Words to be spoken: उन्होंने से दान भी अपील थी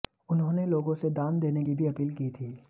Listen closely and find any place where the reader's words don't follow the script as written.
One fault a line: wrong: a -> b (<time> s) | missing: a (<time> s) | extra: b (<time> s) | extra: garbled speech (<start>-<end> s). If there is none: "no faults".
extra: लोगों (0.7 s)
extra: देने की (1.4 s)
extra: की (2.2 s)